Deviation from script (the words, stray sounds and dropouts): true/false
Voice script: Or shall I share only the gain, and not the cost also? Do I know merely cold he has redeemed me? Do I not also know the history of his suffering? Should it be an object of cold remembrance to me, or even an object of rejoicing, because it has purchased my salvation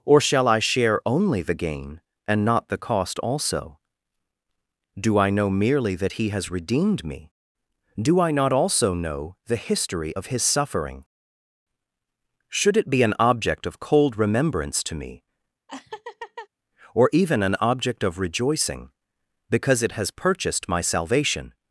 true